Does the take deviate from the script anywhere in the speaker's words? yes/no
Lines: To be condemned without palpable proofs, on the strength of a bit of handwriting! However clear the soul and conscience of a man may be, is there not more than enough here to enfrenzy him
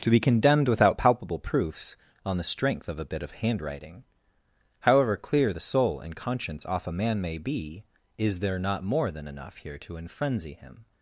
yes